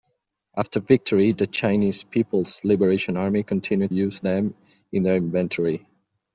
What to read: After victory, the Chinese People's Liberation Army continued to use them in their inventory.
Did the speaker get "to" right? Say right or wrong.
wrong